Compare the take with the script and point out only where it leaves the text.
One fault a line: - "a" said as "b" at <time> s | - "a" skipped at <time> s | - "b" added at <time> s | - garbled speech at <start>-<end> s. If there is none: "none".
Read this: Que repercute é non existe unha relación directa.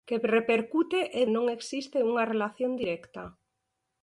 none